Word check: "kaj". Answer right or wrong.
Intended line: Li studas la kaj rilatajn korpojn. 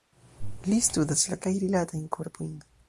right